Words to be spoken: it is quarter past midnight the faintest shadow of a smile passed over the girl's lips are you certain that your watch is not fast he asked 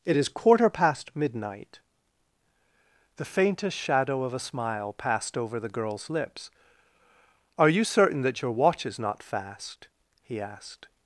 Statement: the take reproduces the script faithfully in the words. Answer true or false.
true